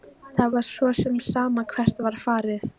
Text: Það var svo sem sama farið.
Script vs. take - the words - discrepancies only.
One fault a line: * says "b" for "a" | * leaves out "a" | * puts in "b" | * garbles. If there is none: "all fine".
* puts in "hvert var"